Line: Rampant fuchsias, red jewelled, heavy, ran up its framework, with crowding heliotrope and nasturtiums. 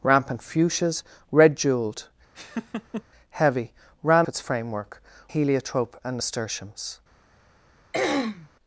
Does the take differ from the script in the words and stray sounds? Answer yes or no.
yes